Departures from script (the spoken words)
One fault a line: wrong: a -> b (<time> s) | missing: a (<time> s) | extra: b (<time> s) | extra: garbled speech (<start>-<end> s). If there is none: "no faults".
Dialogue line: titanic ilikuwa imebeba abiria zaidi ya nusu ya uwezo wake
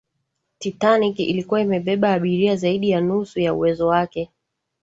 no faults